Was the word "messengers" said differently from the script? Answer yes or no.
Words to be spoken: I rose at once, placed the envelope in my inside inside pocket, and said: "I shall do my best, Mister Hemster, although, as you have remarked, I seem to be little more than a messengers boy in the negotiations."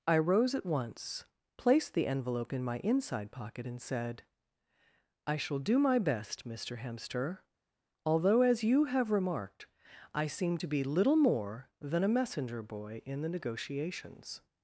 yes